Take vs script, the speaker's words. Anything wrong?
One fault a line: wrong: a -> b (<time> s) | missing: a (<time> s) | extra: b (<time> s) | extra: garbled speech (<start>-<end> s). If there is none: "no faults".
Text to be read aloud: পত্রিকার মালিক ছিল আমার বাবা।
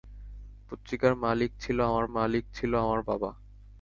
extra: মালিক ছিল আমার (2.1 s)